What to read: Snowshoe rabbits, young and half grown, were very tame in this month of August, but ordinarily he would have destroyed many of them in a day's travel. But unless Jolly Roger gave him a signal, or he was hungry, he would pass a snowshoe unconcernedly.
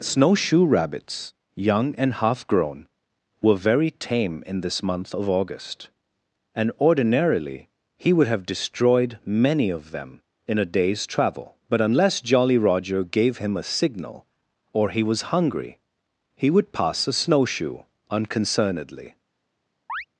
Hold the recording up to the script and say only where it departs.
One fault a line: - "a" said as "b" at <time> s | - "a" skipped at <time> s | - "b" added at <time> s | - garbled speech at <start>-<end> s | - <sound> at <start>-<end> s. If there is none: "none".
- "but" said as "and" at 6.5 s
- chirp at 19.9-20.1 s